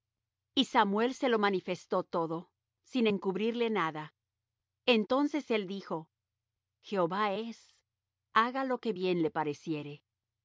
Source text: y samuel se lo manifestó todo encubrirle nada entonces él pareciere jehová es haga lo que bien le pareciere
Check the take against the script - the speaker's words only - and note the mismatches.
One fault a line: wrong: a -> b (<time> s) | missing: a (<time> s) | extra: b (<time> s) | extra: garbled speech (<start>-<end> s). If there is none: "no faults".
extra: sin (2.8 s)
wrong: pareciere -> dijo (5.7 s)